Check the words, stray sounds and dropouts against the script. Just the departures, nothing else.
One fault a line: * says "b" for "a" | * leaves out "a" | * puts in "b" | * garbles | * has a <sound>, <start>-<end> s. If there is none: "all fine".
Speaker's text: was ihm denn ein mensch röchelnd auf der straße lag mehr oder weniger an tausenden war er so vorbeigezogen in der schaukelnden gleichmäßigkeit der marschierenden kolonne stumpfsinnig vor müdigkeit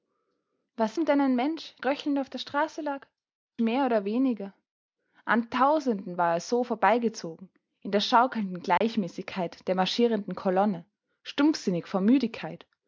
* has a dropout, 8.8-8.8 s